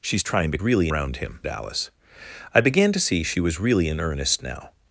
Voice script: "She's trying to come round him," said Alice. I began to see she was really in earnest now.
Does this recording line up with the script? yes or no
no